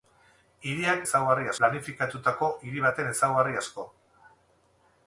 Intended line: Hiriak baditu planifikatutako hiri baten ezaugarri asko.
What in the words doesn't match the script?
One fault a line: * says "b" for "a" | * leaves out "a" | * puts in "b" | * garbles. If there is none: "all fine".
* says "ezaugarri" for "baditu"